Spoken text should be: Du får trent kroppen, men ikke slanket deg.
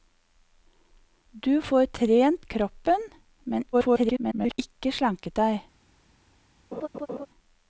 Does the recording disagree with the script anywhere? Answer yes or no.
yes